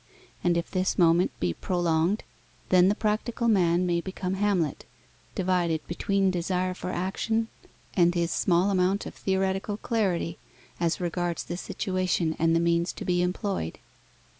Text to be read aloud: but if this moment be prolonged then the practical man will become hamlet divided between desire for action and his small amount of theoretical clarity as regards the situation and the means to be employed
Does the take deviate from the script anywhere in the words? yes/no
yes